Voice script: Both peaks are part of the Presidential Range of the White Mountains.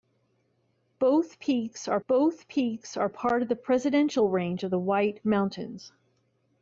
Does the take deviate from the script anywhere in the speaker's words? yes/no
yes